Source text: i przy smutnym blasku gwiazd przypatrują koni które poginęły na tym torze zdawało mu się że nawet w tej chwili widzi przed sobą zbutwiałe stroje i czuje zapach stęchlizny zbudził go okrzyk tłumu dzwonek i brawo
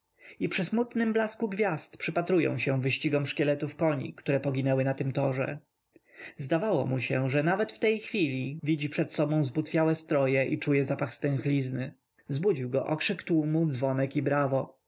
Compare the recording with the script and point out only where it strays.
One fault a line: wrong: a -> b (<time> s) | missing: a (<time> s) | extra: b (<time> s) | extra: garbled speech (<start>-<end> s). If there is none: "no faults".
extra: się wyścigom szkieletów (2.6 s)